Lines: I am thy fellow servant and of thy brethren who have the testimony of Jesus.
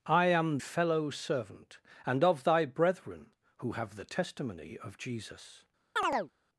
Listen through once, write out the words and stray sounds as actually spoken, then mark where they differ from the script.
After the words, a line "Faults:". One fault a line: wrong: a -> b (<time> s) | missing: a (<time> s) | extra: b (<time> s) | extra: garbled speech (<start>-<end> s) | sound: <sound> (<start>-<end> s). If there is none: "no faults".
I am fellow servant and of thy brethren who have the testimony of Jesus.
Faults:
missing: thy (0.6 s)
sound: chirp (6.0-6.3 s)